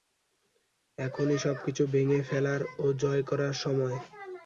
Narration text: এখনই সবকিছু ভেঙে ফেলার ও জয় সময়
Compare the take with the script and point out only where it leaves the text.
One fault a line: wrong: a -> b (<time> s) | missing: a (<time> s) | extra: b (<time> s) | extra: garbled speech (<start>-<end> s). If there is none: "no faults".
extra: করার (3.3 s)